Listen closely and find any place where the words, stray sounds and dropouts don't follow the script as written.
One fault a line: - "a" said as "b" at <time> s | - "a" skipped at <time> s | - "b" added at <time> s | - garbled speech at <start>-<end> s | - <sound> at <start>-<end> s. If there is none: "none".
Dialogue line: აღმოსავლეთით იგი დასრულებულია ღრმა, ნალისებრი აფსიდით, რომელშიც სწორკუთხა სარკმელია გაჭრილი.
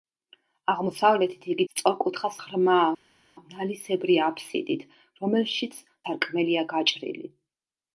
- "დასრულებულია" said as "სწორკუთხა" at 1.7 s
- "სწორკუთხა" skipped at 5.8 s